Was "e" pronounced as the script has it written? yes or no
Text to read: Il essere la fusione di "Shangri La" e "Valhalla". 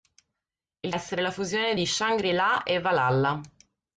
yes